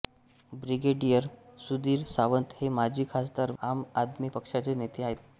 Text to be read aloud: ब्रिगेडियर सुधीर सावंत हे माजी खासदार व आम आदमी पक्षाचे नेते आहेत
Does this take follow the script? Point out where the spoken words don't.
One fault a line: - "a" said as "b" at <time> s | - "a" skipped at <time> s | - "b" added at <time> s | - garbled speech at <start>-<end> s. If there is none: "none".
- "व" skipped at 3.5 s